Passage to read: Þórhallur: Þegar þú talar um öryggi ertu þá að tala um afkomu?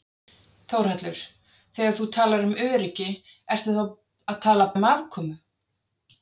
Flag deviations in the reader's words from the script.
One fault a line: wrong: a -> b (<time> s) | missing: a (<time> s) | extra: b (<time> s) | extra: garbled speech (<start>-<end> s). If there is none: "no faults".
no faults